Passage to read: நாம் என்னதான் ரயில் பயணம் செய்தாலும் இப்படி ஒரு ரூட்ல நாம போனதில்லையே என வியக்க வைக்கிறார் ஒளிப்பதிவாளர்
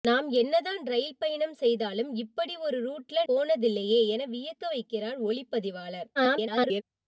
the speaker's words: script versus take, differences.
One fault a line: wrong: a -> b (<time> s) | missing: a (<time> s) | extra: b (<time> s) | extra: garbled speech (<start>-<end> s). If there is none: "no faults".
missing: நாம (3.2 s)
extra: garbled speech (6.2-6.8 s)